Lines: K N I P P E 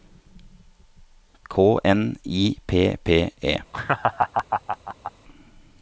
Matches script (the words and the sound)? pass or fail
fail